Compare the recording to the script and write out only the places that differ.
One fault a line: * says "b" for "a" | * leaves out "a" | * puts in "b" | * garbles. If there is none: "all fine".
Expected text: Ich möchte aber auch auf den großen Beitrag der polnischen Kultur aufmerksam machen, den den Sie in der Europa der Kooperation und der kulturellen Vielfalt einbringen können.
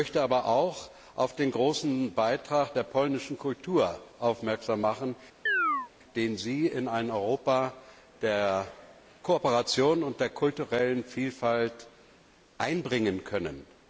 * leaves out "den"
* says "ein" for "der"